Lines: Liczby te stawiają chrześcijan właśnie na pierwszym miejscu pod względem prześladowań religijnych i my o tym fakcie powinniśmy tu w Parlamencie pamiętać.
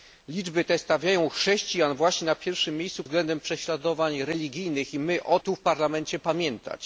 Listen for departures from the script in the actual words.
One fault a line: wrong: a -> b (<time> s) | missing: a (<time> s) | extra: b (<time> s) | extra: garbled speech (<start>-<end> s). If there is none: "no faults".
missing: pod (3.0 s)
missing: tym fakcie powinniśmy (5.4 s)